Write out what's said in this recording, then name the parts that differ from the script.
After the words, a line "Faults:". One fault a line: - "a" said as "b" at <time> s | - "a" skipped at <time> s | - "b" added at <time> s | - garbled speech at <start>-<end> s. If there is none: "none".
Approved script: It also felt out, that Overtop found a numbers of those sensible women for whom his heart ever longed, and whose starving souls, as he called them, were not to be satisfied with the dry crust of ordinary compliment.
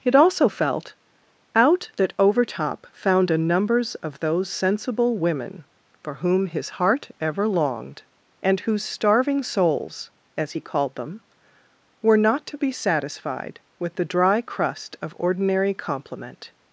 It also felt out, that Overtop found a numbers of those sensible women for whom his heart ever longed, and whose starving souls, as he called them, were not to be satisfied with the dry crust of ordinary compliment.
Faults:
none